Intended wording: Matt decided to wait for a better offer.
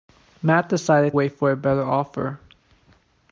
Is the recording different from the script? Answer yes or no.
yes